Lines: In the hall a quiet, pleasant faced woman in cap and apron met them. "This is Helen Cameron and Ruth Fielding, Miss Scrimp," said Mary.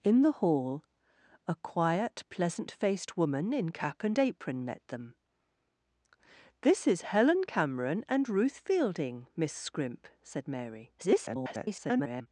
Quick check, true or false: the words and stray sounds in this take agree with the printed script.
false